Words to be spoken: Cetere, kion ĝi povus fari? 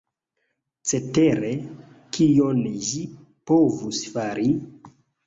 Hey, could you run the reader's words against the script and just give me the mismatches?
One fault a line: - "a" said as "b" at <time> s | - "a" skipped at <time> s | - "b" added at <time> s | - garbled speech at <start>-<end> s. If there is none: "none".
none